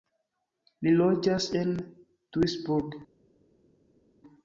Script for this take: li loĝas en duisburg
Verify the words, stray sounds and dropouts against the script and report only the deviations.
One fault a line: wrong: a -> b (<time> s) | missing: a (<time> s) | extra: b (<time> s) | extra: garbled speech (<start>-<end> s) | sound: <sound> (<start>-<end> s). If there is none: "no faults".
no faults